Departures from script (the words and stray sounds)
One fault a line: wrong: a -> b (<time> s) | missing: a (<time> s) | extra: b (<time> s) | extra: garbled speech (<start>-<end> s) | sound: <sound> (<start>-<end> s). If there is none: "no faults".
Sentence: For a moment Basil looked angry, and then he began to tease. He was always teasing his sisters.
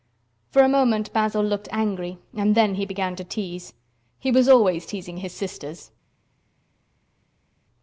no faults